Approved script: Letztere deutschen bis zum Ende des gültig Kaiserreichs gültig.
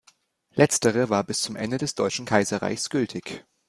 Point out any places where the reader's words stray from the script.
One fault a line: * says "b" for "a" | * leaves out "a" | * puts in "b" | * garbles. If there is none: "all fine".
* says "war" for "deutschen"
* says "deutschen" for "gültig"